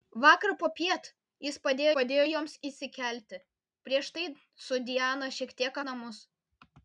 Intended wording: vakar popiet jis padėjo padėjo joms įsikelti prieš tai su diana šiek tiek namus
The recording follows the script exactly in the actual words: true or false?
true